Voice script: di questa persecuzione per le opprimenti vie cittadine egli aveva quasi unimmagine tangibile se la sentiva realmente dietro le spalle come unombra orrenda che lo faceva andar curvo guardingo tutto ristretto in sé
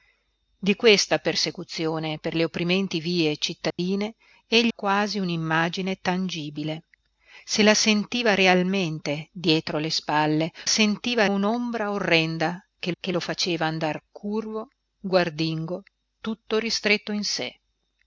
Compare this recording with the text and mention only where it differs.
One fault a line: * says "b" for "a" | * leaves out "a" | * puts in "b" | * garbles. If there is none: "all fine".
* leaves out "aveva"
* says "sentiva" for "come"
* puts in "che"